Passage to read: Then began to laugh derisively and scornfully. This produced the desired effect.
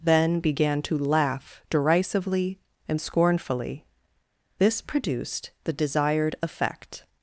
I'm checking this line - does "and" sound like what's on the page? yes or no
yes